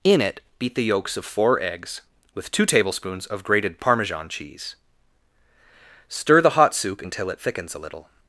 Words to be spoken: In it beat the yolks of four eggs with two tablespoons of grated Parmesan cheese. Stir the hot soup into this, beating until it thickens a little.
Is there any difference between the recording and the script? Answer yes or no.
yes